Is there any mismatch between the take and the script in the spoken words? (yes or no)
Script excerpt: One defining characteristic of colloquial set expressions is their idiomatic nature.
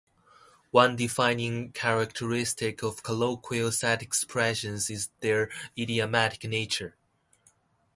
no